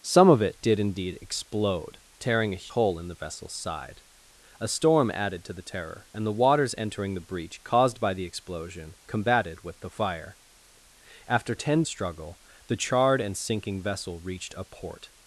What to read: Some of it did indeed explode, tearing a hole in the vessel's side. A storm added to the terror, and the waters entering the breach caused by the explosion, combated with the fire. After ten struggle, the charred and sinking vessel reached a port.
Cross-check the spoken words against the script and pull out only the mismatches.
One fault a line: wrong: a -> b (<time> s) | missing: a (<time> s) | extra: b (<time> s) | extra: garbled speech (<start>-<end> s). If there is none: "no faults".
no faults